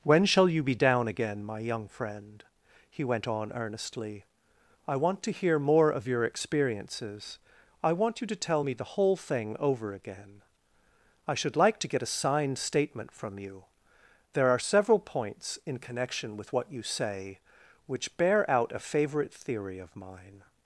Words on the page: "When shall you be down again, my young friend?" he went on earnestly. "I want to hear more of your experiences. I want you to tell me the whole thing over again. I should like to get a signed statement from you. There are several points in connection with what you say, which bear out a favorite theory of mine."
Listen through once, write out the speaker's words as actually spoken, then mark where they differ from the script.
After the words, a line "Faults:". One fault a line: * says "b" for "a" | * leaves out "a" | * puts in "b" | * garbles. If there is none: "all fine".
"When shall you be down again, my young friend?" he went on earnestly. "I want to hear more of your experiences. I want you to tell me the whole thing over again. I should like to get a signed statement from you. There are several points in connection with what you say, which bear out a favorite theory of mine."
Faults:
all fine